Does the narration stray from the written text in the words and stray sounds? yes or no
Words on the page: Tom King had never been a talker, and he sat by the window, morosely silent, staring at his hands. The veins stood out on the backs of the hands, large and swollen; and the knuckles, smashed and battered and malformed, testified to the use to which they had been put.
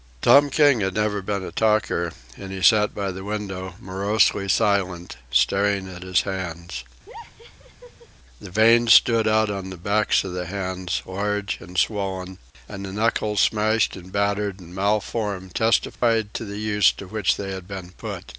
yes